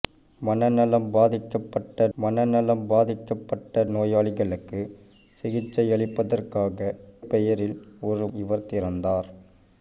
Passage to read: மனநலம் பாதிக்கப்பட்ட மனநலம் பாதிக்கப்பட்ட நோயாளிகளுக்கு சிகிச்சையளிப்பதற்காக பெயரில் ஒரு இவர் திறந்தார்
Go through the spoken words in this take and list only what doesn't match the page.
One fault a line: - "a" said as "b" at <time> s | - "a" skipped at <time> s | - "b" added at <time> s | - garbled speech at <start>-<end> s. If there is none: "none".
none